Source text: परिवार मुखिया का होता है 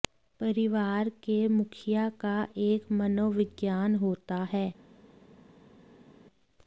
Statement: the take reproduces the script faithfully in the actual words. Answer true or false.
false